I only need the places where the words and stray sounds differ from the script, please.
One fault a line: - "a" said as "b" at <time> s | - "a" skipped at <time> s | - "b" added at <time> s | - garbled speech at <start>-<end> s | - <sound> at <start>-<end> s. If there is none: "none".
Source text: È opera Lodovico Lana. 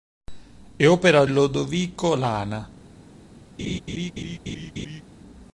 - laugh at 3.6-5.0 s